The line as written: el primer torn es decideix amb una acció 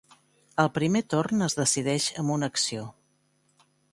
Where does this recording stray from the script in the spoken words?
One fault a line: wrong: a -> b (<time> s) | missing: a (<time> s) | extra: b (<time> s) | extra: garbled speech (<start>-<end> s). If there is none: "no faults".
no faults